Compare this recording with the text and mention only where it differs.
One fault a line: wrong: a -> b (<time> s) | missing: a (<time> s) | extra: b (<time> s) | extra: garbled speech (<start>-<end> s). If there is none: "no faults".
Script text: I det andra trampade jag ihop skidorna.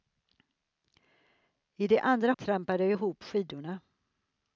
no faults